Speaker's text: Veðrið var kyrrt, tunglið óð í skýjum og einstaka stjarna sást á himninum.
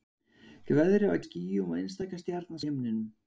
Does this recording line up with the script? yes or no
no